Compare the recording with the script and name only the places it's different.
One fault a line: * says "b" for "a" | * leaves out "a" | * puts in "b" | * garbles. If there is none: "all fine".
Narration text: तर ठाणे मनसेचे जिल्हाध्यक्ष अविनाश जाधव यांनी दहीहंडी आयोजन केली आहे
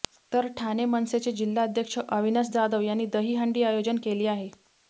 all fine